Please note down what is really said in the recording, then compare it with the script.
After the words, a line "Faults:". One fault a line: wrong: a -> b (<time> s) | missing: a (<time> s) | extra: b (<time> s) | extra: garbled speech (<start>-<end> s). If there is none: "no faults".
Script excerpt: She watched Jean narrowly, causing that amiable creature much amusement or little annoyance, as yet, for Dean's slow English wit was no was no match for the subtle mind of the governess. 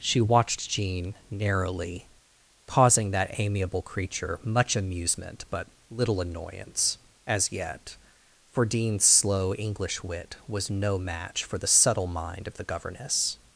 She watched Jean narrowly, causing that amiable creature much amusement but little annoyance, as yet, for Dean's slow English wit was no match for the subtle mind of the governess.
Faults:
wrong: or -> but (5.5 s)
missing: was no (11.0 s)